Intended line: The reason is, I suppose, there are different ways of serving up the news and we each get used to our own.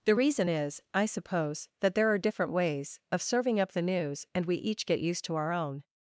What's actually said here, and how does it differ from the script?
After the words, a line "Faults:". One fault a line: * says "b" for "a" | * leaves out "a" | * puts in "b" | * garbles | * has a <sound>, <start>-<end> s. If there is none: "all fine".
The reason is, I suppose, that there are different ways of serving up the news and we each get used to our own.
Faults:
* puts in "that"